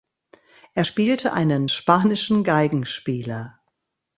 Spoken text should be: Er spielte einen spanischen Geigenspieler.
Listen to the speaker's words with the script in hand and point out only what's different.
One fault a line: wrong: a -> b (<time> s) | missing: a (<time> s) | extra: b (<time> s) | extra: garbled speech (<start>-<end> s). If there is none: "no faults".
no faults